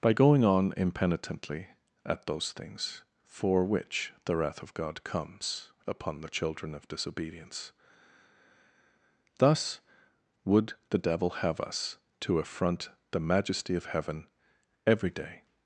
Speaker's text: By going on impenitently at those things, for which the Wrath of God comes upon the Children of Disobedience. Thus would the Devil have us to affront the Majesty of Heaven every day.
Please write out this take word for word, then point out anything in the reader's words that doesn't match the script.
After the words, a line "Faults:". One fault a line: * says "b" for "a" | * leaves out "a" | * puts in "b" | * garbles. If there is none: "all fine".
By going on impenitently at those things, for which the Wrath of God comes upon the Children of Disobedience. Thus would the Devil have us to affront the Majesty of Heaven every day.
Faults:
all fine